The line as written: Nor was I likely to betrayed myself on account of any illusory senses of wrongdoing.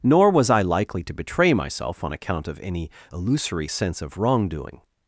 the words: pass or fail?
fail